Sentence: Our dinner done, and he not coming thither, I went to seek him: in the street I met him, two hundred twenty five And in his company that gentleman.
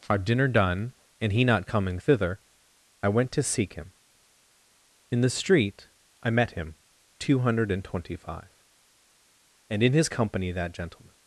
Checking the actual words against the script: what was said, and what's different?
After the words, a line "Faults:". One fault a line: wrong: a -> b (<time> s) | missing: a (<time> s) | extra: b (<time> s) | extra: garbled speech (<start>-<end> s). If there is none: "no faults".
Our dinner done, and he not coming thither, I went to seek him: in the street I met him, two hundred and twenty five And in his company that gentleman.
Faults:
extra: and (7.7 s)